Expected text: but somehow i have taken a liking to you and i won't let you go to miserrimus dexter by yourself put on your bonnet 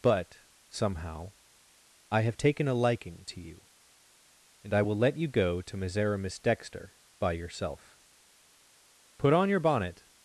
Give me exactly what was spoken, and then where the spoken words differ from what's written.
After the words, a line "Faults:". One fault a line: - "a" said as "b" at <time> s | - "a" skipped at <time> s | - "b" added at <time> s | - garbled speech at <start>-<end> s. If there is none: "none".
but somehow i have taken a liking to you and i will let you go to miserrimus dexter by yourself put on your bonnet
Faults:
- "won't" said as "will" at 4.8 s